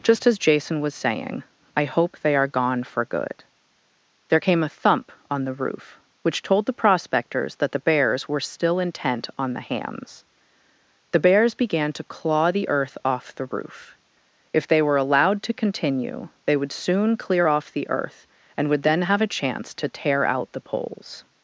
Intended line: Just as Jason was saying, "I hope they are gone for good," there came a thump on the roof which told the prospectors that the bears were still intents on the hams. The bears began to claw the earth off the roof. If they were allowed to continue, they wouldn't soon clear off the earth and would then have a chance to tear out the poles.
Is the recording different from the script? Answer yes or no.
yes